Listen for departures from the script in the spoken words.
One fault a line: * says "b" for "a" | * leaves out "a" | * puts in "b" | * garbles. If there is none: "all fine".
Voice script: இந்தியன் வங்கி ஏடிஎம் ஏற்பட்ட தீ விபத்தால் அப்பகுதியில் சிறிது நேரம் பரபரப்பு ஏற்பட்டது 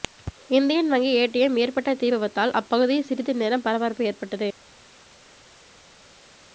all fine